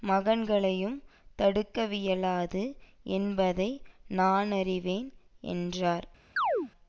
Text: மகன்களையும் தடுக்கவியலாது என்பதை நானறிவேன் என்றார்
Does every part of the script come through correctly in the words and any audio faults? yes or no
no